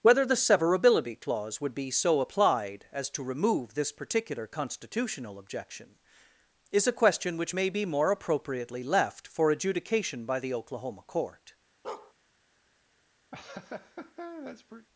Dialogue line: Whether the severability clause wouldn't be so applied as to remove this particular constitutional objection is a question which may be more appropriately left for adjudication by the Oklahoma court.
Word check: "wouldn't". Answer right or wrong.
wrong